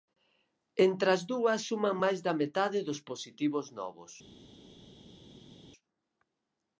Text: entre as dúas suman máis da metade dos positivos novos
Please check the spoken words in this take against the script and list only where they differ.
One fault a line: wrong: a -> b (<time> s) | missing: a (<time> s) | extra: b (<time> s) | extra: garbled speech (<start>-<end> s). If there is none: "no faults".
no faults